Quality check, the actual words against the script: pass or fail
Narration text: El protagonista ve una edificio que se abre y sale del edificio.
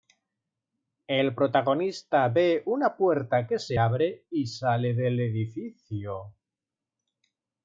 fail